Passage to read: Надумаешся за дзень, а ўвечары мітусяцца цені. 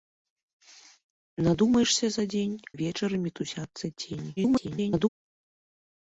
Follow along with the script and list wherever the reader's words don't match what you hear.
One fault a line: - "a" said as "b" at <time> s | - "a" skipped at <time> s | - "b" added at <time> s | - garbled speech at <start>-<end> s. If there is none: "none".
- "а" skipped at 2.6 s
- garbled speech at 4.4-5.1 s